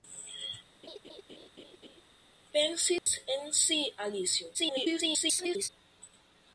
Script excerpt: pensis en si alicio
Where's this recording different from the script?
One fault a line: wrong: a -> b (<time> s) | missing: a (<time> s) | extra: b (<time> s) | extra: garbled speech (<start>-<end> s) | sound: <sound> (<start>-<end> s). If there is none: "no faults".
sound: laugh (0.8-2.0 s)
sound: dropout (3.0-3.1 s)
extra: garbled speech (4.5-5.7 s)